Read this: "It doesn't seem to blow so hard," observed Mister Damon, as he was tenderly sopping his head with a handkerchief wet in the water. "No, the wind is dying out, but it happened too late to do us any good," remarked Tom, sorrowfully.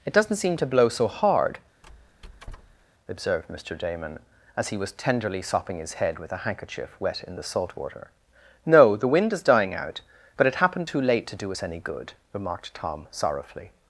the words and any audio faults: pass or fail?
fail